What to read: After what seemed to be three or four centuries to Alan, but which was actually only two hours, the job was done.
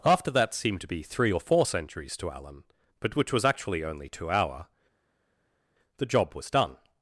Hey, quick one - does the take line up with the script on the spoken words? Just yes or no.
no